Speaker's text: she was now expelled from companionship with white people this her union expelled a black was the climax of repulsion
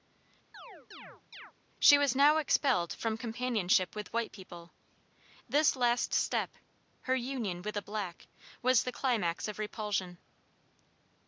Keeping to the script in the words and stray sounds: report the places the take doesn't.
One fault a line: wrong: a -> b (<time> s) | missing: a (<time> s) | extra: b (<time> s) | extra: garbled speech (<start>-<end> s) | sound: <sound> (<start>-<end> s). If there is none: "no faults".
sound: chirp (0.5-1.5 s)
extra: last step (5.8 s)
wrong: expelled -> with (7.6 s)